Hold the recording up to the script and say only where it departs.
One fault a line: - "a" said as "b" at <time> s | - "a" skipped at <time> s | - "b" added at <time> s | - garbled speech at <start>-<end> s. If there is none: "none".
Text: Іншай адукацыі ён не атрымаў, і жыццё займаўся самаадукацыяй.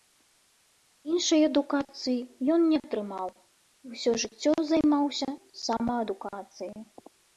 - "ўсё" added at 4.0 s